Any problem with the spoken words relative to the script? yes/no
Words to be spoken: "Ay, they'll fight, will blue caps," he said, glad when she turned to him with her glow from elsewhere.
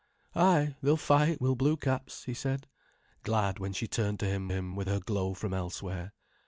yes